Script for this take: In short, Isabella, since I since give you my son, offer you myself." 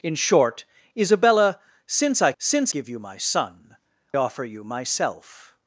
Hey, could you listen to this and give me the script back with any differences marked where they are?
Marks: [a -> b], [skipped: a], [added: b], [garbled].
In short, Isabella, since I since give you my son, offer you myself."